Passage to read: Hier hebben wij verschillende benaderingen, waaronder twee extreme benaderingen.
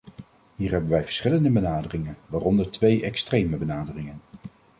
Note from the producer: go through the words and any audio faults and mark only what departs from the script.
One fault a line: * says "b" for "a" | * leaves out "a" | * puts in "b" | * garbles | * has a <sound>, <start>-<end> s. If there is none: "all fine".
all fine